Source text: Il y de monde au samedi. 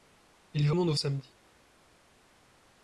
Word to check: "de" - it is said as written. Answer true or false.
true